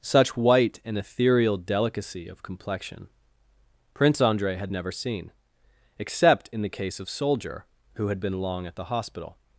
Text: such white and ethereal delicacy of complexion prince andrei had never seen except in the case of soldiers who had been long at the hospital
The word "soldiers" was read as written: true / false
false